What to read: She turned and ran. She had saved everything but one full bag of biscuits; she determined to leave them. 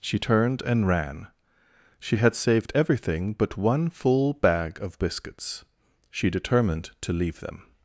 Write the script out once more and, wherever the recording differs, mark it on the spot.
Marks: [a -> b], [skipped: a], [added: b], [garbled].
She turned and ran. She had saved everything but one full bag of biscuits; she determined to leave them.